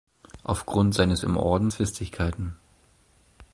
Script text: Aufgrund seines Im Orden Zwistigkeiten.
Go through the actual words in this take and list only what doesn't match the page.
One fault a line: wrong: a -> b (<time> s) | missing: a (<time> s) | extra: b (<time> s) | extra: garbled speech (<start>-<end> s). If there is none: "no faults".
no faults